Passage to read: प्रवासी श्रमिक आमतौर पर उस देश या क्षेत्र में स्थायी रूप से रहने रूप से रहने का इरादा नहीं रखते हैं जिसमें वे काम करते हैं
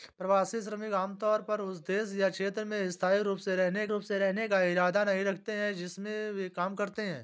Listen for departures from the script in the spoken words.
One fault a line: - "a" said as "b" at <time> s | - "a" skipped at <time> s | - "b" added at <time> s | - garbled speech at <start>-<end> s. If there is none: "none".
none